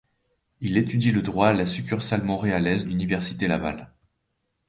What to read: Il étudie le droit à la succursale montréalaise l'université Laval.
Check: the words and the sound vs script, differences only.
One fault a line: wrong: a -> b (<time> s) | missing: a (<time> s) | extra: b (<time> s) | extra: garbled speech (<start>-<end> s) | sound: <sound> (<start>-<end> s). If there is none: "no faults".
no faults